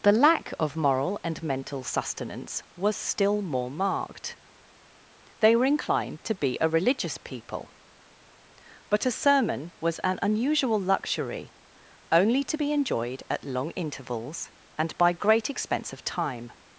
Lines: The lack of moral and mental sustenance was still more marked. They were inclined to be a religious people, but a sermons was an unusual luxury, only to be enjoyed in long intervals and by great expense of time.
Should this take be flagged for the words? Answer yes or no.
yes